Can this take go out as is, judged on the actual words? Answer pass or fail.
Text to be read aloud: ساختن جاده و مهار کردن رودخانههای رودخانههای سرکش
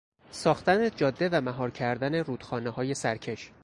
fail